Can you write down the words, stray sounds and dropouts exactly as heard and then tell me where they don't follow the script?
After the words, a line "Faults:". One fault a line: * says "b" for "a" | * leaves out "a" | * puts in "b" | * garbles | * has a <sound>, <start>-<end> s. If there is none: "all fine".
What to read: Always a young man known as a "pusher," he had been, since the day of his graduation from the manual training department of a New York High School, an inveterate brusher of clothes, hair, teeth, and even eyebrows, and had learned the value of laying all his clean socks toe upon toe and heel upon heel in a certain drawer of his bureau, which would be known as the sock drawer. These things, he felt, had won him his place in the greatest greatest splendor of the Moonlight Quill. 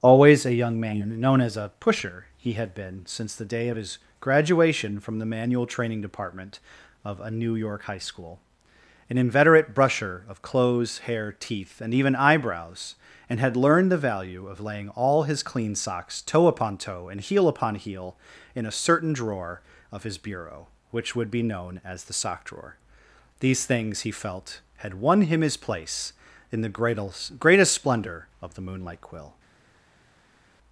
Always a young man known as a "pusher," he had been, since the day of his graduation from the manual training department of a New York High School, an inveterate brusher of clothes, hair, teeth, and even eyebrows, and had learned the value of laying all his clean socks toe upon toe and heel upon heel in a certain drawer of his bureau, which would be known as the sock drawer. These things, he felt, had won him his place in the greatest greatest splendor of the Moonlight Quill.
Faults:
all fine